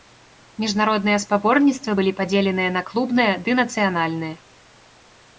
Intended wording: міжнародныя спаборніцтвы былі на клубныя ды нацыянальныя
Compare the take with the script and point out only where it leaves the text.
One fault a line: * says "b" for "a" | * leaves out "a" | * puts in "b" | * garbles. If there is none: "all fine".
* puts in "падзеленыя"